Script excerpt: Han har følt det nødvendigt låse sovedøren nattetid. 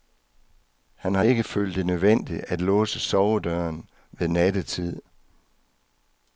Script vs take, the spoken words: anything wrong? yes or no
yes